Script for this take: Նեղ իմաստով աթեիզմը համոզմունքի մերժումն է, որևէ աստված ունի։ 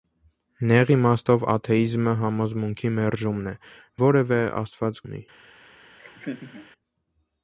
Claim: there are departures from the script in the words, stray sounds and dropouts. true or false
true